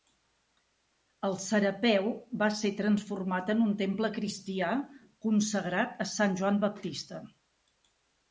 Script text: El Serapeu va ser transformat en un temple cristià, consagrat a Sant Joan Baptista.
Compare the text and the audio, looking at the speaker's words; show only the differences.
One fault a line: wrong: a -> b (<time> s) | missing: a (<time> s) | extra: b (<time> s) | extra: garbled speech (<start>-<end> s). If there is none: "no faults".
no faults